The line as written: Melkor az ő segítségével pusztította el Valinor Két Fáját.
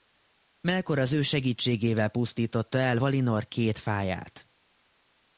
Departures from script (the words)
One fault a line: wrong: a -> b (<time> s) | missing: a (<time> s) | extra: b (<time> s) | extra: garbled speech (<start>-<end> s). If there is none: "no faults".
no faults